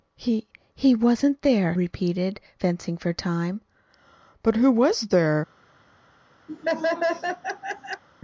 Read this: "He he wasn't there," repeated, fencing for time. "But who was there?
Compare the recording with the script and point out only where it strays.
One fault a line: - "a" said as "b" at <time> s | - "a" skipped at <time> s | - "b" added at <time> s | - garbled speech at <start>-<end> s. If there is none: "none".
none